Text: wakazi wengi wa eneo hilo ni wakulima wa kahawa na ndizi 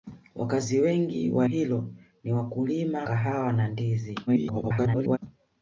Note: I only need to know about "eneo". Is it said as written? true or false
false